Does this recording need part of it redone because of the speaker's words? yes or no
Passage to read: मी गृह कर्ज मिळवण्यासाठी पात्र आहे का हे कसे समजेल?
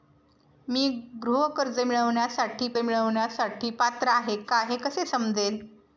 yes